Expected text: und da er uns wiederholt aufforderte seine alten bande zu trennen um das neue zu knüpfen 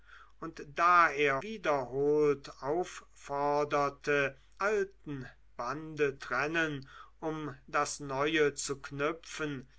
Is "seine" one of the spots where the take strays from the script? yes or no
yes